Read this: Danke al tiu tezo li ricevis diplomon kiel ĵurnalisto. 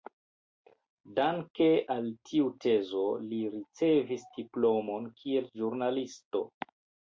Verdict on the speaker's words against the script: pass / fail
pass